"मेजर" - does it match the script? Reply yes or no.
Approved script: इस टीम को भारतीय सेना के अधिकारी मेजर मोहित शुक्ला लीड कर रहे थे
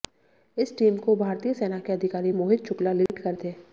no